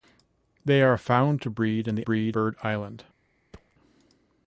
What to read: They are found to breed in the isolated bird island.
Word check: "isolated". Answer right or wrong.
wrong